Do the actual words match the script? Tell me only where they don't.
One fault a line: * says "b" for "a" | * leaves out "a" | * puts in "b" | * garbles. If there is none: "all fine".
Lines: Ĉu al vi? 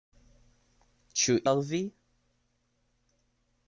all fine